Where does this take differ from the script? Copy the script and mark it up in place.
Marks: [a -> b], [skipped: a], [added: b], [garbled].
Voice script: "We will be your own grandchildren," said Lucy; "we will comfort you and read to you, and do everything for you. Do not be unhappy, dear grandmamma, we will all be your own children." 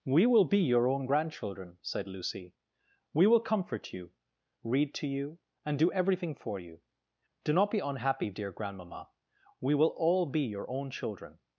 "We will be your own grandchildren," said Lucy; "we will comfort you [skipped: and] read to you, and do everything for you. Do not be unhappy, dear grandmamma, we will all be your own children."